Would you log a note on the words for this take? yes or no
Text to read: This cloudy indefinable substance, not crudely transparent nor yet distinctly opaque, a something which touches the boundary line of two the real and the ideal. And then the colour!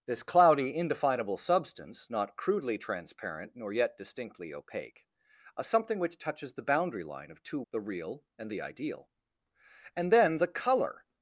no